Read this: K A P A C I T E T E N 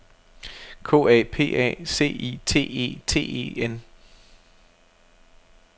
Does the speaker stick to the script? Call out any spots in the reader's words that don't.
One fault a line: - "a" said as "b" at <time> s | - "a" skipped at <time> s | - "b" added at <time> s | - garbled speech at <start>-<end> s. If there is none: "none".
none